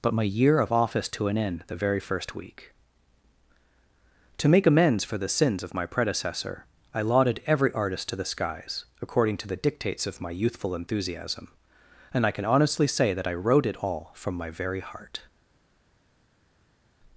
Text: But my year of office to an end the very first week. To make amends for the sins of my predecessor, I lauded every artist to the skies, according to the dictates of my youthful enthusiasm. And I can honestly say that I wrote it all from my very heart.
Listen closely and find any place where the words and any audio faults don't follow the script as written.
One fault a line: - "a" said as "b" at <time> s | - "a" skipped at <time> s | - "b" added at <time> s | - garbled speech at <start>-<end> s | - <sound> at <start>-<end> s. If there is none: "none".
none